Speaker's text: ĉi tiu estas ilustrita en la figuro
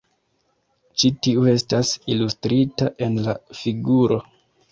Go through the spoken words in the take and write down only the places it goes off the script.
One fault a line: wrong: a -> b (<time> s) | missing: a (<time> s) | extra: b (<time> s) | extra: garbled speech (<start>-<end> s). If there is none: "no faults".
no faults